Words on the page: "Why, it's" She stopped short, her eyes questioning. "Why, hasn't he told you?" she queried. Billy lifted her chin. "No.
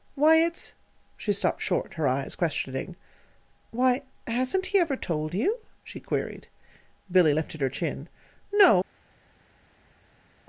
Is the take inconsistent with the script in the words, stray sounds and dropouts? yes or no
yes